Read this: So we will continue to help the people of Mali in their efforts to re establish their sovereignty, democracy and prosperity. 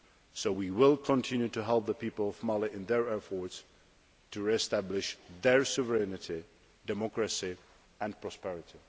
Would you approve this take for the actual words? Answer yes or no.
yes